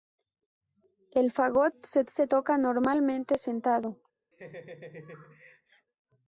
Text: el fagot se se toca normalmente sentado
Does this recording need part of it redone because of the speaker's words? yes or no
no